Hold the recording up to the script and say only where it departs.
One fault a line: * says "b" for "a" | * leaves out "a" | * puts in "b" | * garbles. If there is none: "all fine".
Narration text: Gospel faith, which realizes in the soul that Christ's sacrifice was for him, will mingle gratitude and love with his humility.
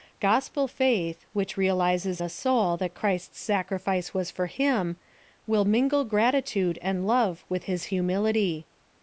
* leaves out "in"